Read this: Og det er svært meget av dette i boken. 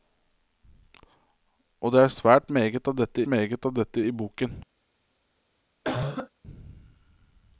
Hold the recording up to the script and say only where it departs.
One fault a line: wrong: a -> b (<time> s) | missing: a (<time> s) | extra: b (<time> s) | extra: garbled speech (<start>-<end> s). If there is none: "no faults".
extra: meget av dette (3.3 s)